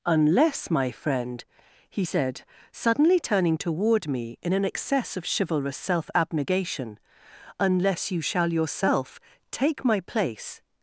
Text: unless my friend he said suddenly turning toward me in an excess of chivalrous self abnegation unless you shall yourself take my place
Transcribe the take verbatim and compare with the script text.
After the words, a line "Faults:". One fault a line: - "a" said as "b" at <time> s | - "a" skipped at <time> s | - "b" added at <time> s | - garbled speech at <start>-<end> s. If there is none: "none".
unless my friend he said suddenly turning toward me in an excess of chivalrous self abnegation unless you shall yourself take my place
Faults:
none